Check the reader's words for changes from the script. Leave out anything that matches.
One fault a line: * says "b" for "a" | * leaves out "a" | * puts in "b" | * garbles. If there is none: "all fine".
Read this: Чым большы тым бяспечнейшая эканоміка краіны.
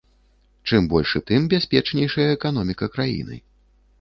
all fine